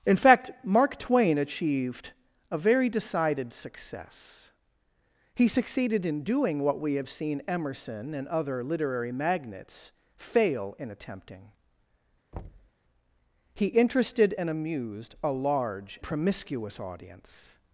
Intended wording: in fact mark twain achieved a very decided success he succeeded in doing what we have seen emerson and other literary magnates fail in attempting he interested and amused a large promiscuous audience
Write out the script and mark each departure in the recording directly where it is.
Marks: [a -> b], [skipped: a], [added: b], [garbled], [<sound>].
in fact mark twain achieved a very decided success he succeeded in doing what we have seen emerson and other literary magnates fail in attempting [thud] he interested and amused a large promiscuous audience